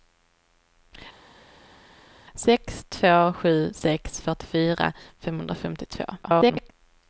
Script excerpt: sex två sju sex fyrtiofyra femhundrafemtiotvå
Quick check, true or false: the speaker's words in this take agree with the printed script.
false